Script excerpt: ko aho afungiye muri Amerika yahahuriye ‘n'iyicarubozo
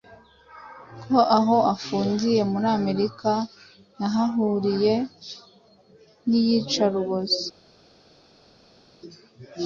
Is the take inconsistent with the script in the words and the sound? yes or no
no